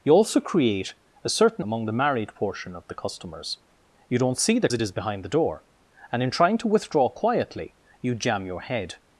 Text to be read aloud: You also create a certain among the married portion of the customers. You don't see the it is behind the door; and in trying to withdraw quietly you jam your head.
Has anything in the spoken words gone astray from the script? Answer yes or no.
no